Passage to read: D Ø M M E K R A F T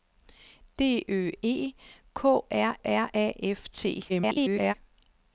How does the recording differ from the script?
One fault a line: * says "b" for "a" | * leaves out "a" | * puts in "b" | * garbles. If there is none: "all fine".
* leaves out "M M"
* puts in "R"
* garbles